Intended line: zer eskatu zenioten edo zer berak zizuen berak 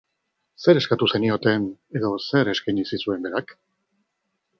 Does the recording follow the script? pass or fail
fail